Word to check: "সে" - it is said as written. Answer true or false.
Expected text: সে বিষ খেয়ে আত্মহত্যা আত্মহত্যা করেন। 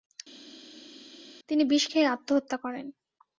false